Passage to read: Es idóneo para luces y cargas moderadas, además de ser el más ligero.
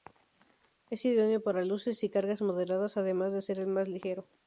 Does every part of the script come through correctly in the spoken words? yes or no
yes